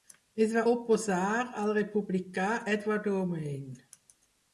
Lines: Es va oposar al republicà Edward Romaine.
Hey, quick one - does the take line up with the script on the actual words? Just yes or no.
yes